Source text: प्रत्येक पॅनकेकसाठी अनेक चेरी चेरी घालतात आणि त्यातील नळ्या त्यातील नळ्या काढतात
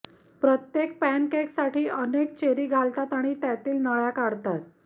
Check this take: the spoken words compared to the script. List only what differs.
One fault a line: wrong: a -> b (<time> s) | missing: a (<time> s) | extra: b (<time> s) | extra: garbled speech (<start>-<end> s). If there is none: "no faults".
missing: चेरी (2.6 s)
missing: त्यातील नळ्या (4.1 s)